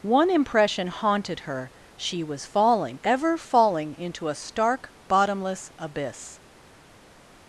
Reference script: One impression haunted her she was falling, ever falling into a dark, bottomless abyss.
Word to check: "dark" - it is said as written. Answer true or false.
false